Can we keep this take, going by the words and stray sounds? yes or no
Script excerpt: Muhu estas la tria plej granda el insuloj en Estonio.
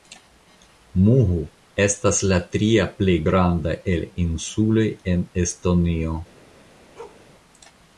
no